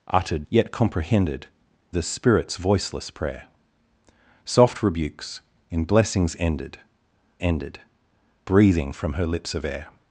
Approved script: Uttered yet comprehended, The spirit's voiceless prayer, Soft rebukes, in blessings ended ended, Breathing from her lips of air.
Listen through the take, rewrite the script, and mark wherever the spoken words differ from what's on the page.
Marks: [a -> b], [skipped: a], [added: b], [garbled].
Uttered yet comprehended, The spirit's voiceless prayer, Soft rebukes, in blessings ended ended, Breathing from her lips of air.